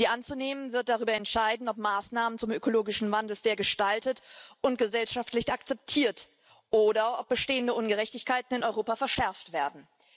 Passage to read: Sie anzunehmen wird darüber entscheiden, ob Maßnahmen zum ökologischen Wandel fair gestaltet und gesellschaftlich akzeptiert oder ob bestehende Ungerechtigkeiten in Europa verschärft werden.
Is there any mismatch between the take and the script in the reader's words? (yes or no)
no